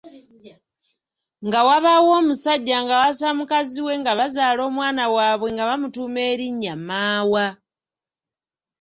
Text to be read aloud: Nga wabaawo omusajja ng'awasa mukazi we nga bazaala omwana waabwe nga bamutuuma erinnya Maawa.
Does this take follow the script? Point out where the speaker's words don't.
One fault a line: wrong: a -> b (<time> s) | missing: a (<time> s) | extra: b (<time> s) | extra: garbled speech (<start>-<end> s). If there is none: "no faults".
no faults